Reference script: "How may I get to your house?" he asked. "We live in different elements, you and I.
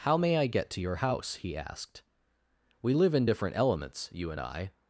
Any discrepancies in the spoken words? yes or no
no